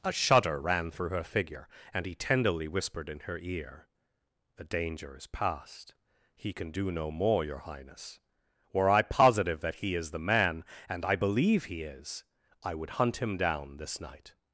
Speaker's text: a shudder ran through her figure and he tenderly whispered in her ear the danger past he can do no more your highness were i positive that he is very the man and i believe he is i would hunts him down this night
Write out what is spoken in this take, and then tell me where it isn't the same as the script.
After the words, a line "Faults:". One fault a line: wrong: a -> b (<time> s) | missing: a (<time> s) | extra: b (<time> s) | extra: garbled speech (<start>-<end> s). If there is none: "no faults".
a shudder ran through her figure and he tenderly whispered in her ear the danger is past he can do no more your highness were i positive that he is the man and i believe he is i would hunt him down this night
Faults:
extra: is (5.2 s)
missing: very (10.1 s)
wrong: hunts -> hunt (12.9 s)